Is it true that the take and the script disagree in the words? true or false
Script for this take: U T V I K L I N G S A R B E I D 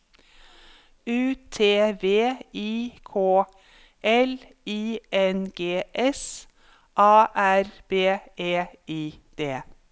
false